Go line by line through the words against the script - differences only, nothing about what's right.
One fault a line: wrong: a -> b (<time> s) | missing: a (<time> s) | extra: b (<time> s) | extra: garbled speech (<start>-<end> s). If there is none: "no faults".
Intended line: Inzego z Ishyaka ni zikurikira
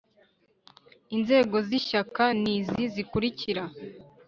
extra: izi (2.6 s)